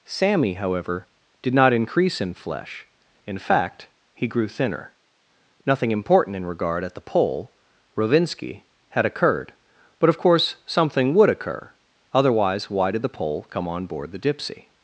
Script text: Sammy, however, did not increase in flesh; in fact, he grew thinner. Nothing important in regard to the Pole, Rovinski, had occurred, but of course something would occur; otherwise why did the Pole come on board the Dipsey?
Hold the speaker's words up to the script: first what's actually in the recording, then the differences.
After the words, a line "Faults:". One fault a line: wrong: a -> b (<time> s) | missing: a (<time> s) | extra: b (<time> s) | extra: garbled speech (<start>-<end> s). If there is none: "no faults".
Sammy, however, did not increase in flesh; in fact, he grew thinner. Nothing important in regard at the Pole, Rovinski, had occurred, but of course something would occur; otherwise why did the Pole come on board the Dipsey?
Faults:
wrong: to -> at (6.8 s)